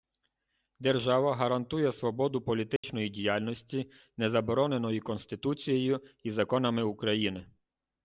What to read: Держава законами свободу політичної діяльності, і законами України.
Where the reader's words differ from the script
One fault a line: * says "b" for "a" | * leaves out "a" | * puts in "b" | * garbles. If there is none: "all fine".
* says "гарантує" for "законами"
* puts in "не забороненої Конституцією"